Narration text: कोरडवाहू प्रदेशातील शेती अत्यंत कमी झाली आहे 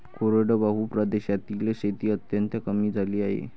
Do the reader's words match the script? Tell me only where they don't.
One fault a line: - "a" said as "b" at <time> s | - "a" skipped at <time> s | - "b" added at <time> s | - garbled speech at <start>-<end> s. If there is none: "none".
none